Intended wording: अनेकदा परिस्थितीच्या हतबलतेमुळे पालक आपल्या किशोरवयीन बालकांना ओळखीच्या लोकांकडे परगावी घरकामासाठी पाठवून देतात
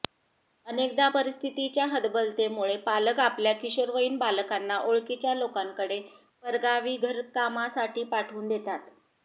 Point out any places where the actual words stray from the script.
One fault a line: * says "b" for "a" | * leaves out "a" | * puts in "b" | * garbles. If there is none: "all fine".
all fine